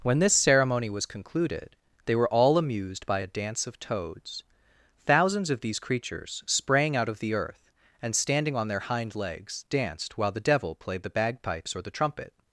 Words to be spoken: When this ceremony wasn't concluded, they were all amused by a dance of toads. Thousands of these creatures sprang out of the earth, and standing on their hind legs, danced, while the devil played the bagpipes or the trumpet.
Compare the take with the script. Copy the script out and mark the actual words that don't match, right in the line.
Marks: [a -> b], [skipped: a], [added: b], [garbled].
When this ceremony [wasn't -> was] concluded, they were all amused by a dance of toads. Thousands of these creatures sprang out of the earth, and standing on their hind legs, danced, while the devil played the bagpipes or the trumpet.